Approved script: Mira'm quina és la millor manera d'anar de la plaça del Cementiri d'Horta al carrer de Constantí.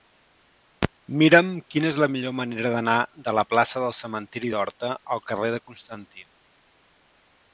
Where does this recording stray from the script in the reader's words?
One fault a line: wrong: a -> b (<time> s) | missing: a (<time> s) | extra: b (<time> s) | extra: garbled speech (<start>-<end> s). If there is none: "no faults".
no faults